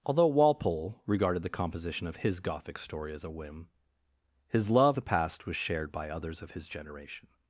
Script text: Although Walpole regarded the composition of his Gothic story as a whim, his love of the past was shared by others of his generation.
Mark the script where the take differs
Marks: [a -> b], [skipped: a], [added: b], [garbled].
Although Walpole regarded the composition of his Gothic story as a whim, his love [skipped: of] the past was shared by others of his generation.